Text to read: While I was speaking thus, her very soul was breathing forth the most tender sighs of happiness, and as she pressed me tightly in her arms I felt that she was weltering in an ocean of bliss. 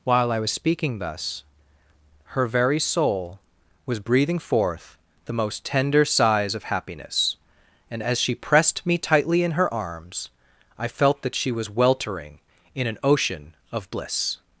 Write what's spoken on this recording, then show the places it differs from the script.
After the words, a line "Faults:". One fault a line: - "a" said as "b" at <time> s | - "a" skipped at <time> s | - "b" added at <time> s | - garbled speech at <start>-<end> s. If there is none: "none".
While I was speaking thus, her very soul was breathing forth the most tender sighs of happiness, and as she pressed me tightly in her arms I felt that she was weltering in an ocean of bliss.
Faults:
none